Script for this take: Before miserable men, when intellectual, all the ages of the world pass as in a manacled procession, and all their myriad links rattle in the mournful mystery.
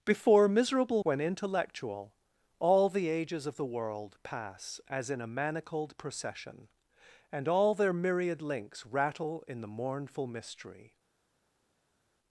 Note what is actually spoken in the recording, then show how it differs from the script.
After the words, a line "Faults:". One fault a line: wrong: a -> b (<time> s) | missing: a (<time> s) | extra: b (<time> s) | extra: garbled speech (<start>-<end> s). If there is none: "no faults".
Before miserable when intellectual, all the ages of the world pass as in a manacled procession, and all their myriad links rattle in the mournful mystery.
Faults:
missing: men (1.0 s)